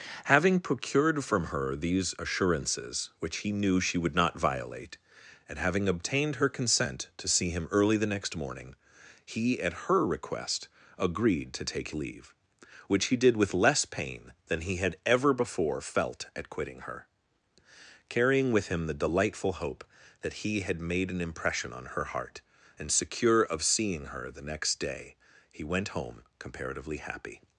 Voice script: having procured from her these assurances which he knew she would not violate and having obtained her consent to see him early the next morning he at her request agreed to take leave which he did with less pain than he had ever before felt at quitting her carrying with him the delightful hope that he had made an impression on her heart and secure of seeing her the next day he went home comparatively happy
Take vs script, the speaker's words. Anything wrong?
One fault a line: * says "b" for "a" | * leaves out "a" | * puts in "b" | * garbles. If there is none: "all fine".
all fine